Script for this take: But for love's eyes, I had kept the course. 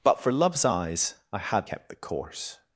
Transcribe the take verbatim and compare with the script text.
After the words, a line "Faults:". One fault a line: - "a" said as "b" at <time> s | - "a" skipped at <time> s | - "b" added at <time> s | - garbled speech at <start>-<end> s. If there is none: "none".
But for love's eyes, I had kept the course.
Faults:
none